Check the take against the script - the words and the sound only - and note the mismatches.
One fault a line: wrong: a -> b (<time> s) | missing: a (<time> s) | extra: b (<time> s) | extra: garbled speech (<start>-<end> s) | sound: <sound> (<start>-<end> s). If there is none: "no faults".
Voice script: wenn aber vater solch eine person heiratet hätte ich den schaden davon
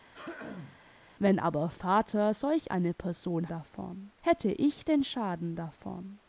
sound: throat clearing (0.1-0.8 s)
wrong: heiratet -> davon (3.5 s)